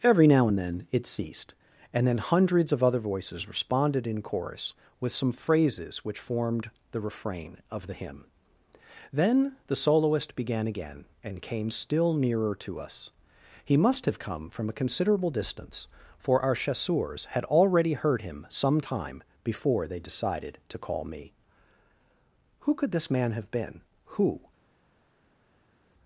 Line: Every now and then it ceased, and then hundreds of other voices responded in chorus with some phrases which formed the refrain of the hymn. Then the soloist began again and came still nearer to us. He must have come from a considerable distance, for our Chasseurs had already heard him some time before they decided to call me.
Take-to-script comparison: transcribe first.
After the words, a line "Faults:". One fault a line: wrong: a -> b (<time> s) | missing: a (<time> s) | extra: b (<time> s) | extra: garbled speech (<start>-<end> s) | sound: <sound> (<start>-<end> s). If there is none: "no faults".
Every now and then it ceased, and then hundreds of other voices responded in chorus with some phrases which formed the refrain of the hymn. Then the soloist began again and came still nearer to us. He must have come from a considerable distance, for our Chasseurs had already heard him some time before they decided to call me. Who could this man have been, who
Faults:
extra: Who could this man have been who (22.6 s)